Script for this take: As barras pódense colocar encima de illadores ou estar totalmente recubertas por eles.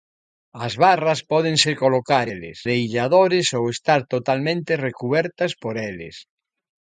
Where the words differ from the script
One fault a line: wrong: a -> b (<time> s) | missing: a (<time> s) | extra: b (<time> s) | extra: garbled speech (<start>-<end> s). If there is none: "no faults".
wrong: encima -> eles (2.3 s)